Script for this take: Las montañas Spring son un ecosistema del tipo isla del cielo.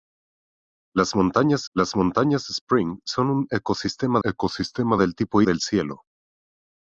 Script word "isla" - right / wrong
wrong